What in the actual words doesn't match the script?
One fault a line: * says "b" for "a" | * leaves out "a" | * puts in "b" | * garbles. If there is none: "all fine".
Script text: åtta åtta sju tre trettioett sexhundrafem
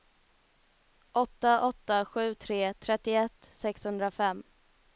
all fine